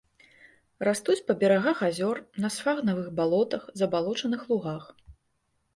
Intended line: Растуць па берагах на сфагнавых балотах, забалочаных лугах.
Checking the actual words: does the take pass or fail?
fail